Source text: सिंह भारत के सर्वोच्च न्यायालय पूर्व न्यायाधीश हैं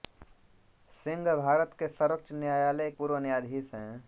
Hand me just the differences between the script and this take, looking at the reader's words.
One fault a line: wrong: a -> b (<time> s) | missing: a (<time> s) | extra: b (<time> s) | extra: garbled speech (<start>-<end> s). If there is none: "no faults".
no faults